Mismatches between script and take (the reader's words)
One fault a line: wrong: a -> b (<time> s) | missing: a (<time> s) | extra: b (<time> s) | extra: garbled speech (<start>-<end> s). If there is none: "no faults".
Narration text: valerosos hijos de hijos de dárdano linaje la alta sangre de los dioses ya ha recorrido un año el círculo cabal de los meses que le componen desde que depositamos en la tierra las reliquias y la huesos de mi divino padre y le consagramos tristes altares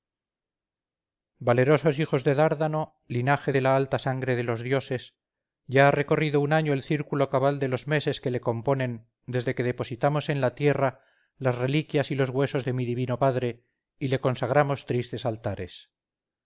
missing: hijos de (2.3 s)
extra: de (3.5 s)
wrong: la -> los (12.1 s)